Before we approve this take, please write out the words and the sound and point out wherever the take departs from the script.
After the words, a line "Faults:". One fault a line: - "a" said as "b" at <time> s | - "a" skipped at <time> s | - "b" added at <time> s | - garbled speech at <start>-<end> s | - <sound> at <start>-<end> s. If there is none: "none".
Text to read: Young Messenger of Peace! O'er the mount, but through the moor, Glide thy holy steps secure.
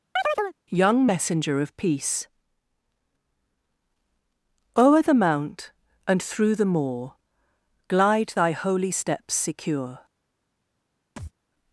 Young Messenger of Peace! O'er the mount, and through the moor, Glide thy holy steps secure.
Faults:
- chirp at 0.2-0.6 s
- "but" said as "and" at 6.1 s
- thud at 11.2-11.3 s